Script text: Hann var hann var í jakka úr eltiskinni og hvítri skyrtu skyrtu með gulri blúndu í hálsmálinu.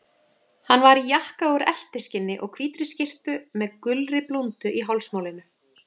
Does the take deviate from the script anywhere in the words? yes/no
yes